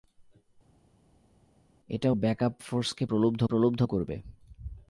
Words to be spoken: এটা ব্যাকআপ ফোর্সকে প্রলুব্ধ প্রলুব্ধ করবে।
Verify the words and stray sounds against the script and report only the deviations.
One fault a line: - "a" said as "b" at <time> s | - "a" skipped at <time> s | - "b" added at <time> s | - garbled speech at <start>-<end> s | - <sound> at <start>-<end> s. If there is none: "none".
none